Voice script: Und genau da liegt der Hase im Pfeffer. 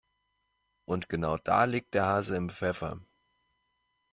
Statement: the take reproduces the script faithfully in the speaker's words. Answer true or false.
true